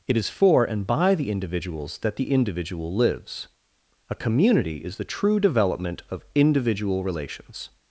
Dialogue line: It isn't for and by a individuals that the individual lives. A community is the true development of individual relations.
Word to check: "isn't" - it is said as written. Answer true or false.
false